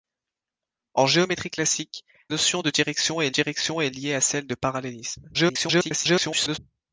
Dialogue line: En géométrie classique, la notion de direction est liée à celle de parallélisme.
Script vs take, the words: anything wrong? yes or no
yes